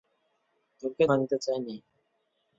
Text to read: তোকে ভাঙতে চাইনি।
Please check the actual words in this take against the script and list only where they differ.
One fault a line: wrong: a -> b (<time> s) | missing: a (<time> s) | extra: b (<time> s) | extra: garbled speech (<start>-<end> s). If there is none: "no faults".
no faults